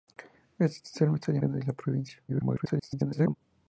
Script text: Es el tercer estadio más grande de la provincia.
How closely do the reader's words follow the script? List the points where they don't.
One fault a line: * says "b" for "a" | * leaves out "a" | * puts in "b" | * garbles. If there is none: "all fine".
* leaves out "más"
* garbles